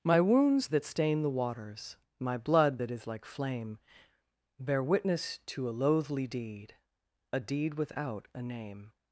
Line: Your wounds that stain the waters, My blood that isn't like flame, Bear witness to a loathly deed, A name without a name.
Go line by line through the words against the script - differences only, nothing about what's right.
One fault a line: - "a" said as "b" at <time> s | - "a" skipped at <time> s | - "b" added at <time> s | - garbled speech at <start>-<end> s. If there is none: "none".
- "Your" said as "My" at 0.0 s
- "isn't" said as "is" at 2.9 s
- "name" said as "deed" at 7.4 s